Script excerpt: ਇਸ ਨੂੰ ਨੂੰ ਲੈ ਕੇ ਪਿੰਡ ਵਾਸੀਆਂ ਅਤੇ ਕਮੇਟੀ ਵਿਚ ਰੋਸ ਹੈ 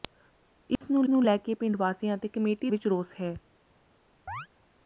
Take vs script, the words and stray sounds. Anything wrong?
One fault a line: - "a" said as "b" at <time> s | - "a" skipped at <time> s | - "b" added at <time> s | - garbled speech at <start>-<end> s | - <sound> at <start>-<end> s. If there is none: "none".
- dropout at 0.8-0.8 s
- chirp at 4.3-4.5 s